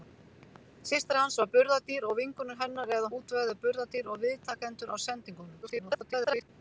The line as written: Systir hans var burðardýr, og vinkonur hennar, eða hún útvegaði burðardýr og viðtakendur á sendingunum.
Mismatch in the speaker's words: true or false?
true